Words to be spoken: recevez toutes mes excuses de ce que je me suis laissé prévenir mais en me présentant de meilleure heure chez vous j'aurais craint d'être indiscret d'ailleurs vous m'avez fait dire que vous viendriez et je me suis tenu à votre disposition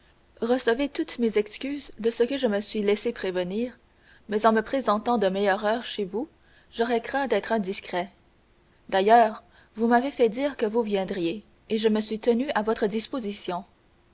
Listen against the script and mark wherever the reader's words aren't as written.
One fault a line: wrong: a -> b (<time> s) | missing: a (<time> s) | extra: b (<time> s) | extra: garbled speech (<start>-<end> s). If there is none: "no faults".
no faults